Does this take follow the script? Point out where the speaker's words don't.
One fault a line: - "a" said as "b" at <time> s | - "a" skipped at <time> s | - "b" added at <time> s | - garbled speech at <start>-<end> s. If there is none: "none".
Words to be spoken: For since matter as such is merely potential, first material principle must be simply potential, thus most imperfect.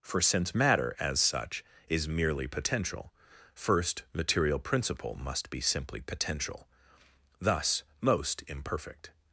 none